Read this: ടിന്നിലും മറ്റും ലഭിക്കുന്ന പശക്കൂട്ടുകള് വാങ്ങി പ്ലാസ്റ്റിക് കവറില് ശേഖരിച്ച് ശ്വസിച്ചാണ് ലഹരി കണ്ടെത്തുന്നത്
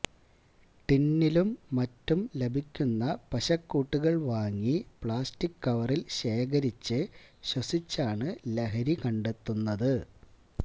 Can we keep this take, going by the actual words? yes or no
yes